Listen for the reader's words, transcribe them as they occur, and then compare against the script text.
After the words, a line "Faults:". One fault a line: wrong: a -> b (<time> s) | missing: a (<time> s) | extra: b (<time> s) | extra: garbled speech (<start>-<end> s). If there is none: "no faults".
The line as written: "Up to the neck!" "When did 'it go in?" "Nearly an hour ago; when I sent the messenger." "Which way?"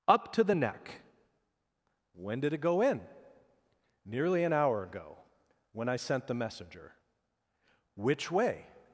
"Up to the neck!" "When did 'it go in?" "Nearly an hour ago; when I sent the messenger." "Which way?"
Faults:
no faults